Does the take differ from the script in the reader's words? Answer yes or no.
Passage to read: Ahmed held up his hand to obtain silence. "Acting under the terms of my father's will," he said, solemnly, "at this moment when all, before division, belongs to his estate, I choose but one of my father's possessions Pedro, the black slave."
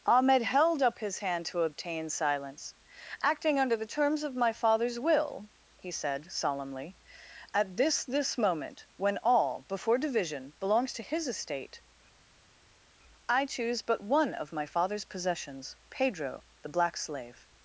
yes